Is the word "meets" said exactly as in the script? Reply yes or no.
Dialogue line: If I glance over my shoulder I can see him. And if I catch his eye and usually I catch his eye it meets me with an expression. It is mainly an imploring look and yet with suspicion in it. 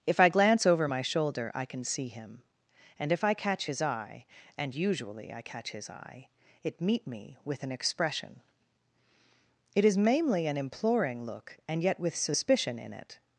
no